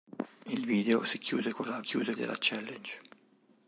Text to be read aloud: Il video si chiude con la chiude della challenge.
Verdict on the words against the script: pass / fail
pass